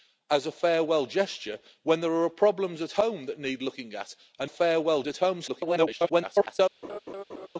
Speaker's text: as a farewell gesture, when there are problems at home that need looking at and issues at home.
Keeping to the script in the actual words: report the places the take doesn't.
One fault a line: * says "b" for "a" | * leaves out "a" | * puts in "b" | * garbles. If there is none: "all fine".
* says "farewell" for "issues"
* garbles